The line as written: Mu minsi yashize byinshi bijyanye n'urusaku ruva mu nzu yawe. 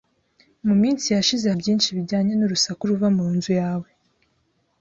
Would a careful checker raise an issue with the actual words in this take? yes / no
no